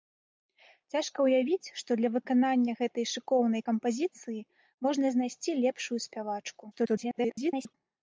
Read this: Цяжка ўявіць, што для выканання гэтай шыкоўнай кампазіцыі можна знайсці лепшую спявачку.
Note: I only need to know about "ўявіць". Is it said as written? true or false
true